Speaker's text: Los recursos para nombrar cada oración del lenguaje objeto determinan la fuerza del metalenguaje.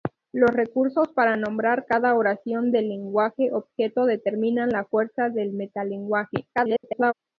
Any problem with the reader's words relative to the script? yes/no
yes